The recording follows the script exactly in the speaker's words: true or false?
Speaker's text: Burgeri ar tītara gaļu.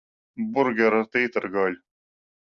true